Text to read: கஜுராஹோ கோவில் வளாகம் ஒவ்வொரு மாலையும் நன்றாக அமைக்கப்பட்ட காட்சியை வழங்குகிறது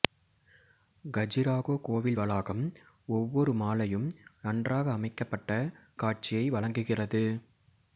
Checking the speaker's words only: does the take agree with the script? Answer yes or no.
yes